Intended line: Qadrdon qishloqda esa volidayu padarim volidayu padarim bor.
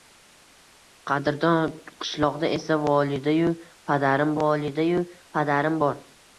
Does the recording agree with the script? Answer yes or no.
yes